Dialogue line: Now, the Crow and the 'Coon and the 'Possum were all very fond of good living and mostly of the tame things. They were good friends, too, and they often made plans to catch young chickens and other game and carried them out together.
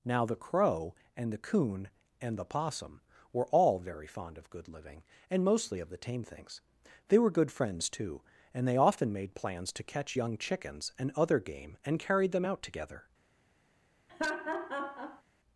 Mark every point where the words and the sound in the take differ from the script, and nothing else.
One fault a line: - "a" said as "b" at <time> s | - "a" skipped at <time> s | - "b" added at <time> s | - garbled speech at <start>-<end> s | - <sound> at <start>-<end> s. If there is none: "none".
- laugh at 14.1-15.2 s